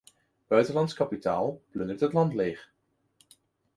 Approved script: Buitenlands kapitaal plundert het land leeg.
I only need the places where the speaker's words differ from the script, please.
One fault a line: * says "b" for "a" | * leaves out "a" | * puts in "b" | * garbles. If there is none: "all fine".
all fine